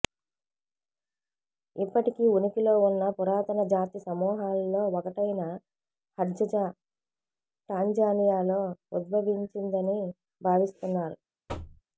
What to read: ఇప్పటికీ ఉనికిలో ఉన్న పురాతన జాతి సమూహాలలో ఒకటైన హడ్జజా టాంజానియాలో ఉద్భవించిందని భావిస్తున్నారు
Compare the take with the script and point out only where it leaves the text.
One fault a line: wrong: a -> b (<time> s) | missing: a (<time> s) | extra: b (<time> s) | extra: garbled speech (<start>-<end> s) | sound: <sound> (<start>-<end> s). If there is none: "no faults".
sound: thud (11.5-11.8 s)